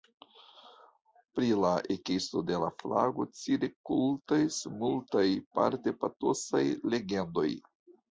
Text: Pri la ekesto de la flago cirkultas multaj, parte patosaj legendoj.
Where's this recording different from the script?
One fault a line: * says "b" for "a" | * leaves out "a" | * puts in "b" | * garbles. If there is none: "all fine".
all fine